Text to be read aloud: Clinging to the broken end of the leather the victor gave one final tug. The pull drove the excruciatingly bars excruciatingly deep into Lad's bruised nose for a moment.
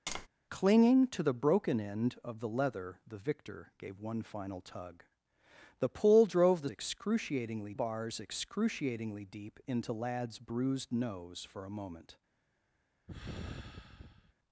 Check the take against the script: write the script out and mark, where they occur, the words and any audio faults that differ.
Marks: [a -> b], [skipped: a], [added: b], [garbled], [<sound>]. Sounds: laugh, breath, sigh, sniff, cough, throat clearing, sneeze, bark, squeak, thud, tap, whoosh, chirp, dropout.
[tap] Clinging to the broken end of the leather the victor gave one final tug. The pull drove the excruciatingly bars excruciatingly deep into Lad's bruised nose for a moment. [sigh]